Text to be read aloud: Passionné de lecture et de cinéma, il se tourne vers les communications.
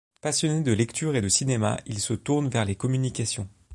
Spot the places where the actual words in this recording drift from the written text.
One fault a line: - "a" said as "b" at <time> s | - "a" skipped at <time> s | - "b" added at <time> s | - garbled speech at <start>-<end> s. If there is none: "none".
none